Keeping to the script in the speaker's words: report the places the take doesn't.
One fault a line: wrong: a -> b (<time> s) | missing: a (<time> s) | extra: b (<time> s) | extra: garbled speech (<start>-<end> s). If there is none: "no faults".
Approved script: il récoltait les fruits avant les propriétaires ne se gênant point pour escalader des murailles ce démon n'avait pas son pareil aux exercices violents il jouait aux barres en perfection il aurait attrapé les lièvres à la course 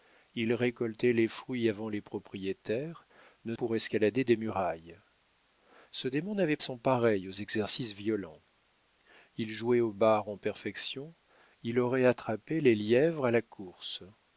missing: se gênant point (3.5 s)
missing: pas (6.6 s)